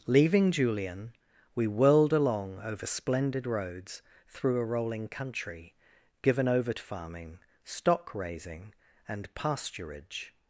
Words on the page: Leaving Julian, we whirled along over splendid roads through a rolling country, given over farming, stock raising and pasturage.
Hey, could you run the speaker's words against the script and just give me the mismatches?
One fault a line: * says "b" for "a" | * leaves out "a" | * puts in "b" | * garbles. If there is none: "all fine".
all fine